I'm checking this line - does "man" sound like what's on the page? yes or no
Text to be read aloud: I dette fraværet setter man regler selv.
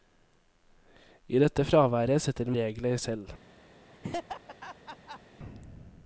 no